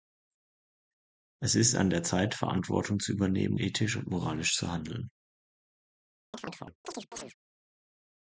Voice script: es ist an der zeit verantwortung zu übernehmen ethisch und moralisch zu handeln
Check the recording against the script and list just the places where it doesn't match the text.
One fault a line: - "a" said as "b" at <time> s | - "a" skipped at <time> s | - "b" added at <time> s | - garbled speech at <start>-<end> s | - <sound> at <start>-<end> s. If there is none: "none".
- chirp at 6.3-7.3 s